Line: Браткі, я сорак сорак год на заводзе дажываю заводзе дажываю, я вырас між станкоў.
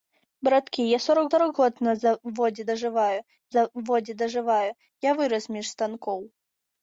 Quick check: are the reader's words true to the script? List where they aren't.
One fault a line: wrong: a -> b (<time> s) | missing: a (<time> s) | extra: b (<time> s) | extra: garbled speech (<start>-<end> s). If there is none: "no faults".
no faults